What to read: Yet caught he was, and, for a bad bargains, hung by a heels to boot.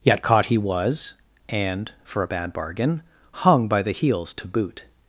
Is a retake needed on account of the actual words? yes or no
yes